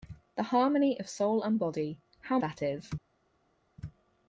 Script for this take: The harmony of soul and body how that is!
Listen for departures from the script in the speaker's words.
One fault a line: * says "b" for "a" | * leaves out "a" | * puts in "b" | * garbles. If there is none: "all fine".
all fine